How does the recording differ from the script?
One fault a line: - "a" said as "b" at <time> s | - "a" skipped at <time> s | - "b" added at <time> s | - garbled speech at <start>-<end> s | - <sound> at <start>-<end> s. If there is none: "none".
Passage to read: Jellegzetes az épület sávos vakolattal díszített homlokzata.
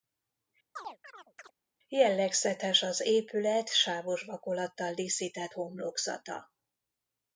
- chirp at 0.8-1.5 s